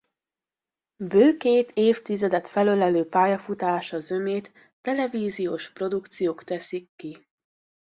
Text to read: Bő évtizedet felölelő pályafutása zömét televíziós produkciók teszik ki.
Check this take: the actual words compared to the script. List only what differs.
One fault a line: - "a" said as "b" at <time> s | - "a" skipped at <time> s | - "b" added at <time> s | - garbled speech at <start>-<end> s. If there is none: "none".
- "két" added at 1.4 s